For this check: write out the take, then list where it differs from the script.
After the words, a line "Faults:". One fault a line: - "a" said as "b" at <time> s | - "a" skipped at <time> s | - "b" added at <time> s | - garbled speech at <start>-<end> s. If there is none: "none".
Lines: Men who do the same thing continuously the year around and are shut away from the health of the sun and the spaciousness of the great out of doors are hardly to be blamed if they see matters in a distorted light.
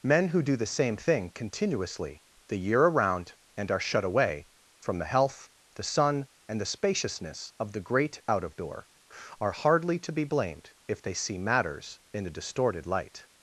Men who do the same thing continuously the year around and are shut away from the health the sun and the spaciousness of the great out of door are hardly to be blamed if they see matters in a distorted light.
Faults:
- "of" skipped at 5.5 s
- "doors" said as "door" at 8.6 s